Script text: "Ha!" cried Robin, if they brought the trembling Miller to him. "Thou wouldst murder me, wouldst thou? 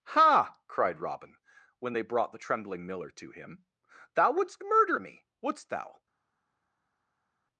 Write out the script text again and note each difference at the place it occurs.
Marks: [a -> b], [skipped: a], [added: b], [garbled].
"Ha!" cried Robin, [if -> when] they brought the trembling Miller to him. "Thou wouldst murder me, wouldst thou?